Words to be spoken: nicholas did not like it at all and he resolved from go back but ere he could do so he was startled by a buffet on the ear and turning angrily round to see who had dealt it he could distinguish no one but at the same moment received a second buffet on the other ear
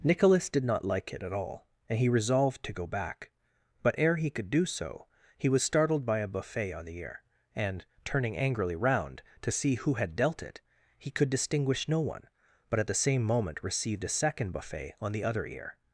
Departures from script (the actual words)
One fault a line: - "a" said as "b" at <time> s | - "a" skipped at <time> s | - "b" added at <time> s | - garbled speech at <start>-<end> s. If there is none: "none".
- "from" said as "to" at 2.6 s